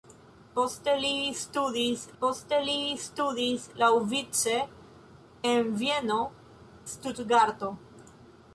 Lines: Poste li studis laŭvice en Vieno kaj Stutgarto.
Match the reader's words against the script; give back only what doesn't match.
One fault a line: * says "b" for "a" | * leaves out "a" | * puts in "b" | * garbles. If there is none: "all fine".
* puts in "poste li studis"
* leaves out "kaj"